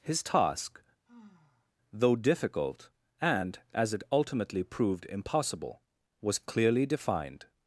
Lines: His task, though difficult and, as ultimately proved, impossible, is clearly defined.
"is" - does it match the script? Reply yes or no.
no